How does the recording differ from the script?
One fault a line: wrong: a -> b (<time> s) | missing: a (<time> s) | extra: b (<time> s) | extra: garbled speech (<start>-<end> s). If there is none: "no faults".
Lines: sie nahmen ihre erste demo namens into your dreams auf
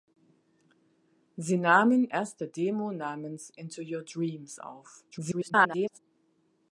missing: ihre (2.1 s)
extra: garbled speech (5.1-6.0 s)